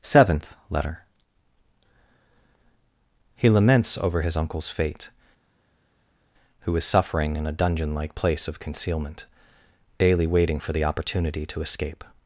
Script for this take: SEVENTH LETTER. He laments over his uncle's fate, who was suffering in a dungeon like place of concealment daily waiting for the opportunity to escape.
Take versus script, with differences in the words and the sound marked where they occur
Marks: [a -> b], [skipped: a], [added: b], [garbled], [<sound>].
SEVENTH LETTER. He laments over his uncle's fate, who [was -> is] suffering in a dungeon like place of concealment daily waiting for the opportunity to escape.